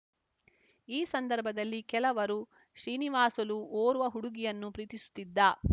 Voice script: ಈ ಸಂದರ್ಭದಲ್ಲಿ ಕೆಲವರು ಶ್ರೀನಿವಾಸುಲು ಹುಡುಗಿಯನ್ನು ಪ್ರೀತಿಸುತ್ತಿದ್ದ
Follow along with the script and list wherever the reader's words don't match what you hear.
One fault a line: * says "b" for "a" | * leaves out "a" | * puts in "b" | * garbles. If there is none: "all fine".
* puts in "ಓರ್ವ"